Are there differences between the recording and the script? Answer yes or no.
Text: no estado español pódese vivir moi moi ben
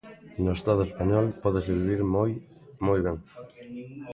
no